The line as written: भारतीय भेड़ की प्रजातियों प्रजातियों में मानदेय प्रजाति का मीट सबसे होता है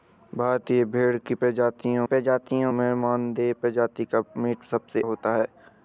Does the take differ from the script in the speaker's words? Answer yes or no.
no